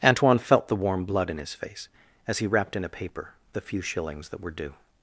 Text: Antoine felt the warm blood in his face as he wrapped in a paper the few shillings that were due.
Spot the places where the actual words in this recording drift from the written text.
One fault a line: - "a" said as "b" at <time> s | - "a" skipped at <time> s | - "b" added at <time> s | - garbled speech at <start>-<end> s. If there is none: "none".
none